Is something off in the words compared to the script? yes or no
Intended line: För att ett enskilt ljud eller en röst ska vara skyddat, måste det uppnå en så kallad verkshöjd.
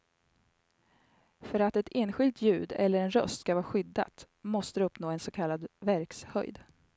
no